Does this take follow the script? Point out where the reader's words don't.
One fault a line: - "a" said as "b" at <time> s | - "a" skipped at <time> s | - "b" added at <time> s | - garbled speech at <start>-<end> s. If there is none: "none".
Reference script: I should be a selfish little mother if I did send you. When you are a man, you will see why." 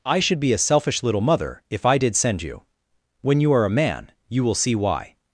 none